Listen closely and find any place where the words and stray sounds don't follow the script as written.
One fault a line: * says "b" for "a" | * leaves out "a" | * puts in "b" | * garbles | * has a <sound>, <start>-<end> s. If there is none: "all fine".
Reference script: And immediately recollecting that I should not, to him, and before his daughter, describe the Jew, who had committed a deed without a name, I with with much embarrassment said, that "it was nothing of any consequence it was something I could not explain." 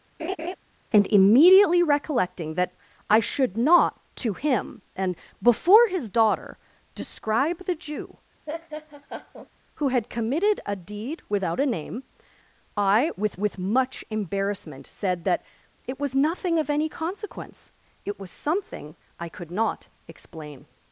* has a laugh, 0.2-0.6 s
* has a laugh, 8.5-9.5 s